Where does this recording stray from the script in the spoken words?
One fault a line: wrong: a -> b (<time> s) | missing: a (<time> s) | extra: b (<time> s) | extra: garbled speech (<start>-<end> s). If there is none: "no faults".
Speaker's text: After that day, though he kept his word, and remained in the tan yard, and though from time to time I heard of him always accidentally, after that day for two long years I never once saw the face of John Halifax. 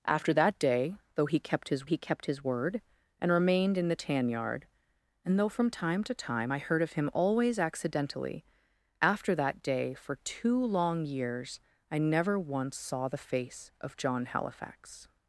extra: he kept his (1.8 s)